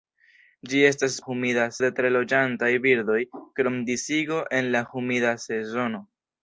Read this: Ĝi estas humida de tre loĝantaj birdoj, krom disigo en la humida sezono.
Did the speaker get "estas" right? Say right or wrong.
right